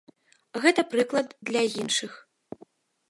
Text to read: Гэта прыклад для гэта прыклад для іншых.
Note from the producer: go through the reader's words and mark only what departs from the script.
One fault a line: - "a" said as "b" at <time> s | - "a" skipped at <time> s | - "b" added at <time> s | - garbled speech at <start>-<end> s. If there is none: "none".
- "гэта прыклад для" skipped at 1.6 s